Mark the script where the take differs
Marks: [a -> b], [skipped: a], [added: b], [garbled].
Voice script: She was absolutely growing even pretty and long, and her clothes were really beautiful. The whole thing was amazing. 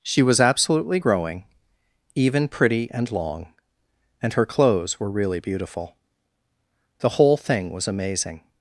She was absolutely growing even pretty and long, and her clothes were really beautiful. The whole thing was amazing.